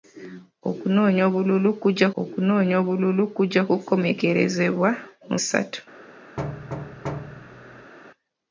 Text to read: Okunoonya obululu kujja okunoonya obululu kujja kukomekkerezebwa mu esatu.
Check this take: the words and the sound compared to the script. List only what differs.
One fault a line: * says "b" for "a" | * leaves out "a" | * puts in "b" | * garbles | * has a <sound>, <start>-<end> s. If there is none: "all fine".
* has a thud, 6.4-7.9 s